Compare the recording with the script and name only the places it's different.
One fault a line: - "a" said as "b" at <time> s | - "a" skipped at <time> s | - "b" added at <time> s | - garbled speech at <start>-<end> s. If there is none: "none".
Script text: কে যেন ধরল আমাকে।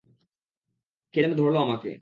none